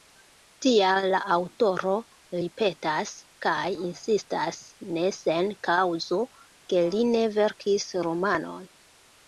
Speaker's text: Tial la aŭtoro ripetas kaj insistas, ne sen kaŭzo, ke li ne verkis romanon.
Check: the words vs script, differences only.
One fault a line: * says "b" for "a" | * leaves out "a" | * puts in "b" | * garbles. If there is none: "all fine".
all fine